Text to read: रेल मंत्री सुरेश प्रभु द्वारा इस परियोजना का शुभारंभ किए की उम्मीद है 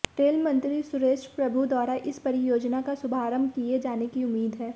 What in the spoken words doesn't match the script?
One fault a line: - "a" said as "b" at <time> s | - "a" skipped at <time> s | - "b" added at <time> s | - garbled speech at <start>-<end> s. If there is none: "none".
- "जाने" added at 3.8 s